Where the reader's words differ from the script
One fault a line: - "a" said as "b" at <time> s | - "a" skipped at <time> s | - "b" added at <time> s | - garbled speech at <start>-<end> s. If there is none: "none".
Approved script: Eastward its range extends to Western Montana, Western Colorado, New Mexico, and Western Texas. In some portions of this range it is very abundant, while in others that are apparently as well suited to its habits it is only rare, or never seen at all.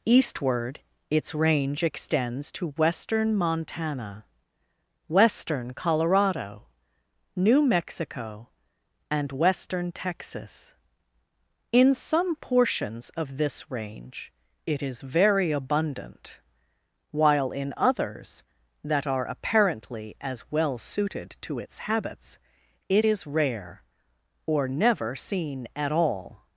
- "only" skipped at 23.3 s